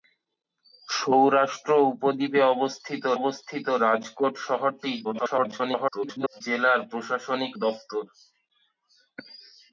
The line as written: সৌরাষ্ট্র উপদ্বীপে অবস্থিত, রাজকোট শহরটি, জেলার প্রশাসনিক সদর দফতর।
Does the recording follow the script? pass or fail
fail